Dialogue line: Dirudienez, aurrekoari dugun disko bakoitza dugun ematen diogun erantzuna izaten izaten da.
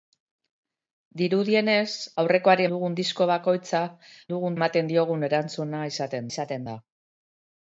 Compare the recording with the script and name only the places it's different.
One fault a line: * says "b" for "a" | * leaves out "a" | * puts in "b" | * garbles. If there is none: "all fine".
all fine